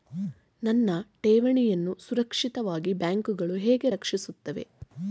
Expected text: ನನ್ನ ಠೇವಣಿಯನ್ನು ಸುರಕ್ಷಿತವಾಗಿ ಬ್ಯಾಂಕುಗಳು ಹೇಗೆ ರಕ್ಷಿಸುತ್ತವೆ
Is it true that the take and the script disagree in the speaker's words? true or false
false